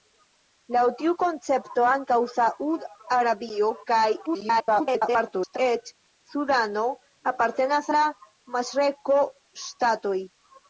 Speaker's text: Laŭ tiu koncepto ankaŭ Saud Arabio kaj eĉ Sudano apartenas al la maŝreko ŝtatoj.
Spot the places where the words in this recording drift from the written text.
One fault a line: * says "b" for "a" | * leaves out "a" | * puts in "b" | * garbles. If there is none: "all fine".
* garbles
* leaves out "al"